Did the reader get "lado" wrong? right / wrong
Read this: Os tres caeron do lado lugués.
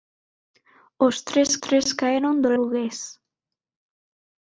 wrong